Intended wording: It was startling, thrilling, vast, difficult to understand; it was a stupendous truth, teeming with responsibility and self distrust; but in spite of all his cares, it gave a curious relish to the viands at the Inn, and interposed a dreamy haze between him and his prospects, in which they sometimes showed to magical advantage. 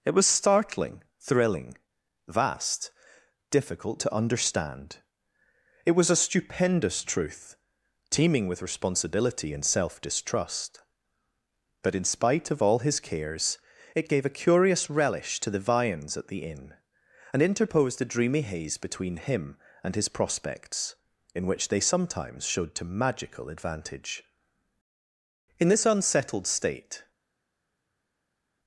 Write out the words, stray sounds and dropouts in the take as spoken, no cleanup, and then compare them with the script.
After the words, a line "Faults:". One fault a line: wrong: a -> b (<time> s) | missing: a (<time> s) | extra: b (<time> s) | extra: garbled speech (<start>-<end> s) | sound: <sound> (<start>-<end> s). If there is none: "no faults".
It was startling, thrilling, vast, difficult to understand; it was a stupendous truth, teeming with responsibility and self distrust; but in spite of all his cares, it gave a curious relish to the viands at the Inn, and interposed a dreamy haze between him and his prospects, in which they sometimes showed to magical advantage. In this unsettled state
Faults:
extra: In this unsettled state (25.6 s)